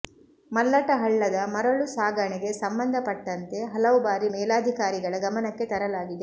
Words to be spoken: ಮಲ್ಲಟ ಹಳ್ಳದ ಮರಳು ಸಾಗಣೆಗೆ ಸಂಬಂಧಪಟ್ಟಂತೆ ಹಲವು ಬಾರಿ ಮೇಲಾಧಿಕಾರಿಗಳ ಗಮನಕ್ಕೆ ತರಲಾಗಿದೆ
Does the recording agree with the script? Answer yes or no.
yes